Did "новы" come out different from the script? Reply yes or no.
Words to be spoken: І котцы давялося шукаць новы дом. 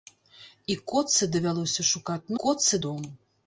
yes